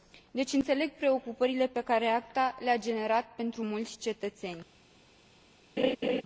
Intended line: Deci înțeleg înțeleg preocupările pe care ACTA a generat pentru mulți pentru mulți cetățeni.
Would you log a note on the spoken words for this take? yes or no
yes